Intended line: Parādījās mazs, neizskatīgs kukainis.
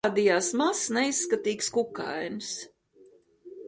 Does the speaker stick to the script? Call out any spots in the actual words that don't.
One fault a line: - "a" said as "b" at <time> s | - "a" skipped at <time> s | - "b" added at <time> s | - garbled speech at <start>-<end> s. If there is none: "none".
none